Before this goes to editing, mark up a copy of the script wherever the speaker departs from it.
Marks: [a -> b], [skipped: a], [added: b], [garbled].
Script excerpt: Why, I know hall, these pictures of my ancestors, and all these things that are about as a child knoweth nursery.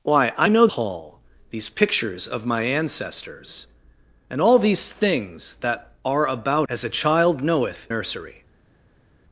Why, I know hall, these pictures of my ancestors, and all these things that are about as a child knoweth nursery.